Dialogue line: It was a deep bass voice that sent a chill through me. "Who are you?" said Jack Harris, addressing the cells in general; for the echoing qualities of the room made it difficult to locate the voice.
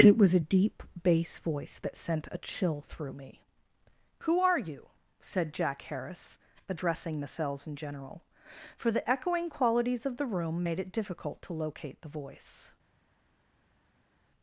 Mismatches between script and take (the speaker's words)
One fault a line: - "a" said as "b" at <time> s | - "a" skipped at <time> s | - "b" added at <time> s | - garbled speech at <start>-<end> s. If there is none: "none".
none